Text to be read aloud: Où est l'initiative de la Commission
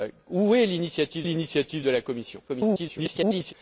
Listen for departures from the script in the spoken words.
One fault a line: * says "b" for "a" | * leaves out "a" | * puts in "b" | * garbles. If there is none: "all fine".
* puts in "l'initiative"
* garbles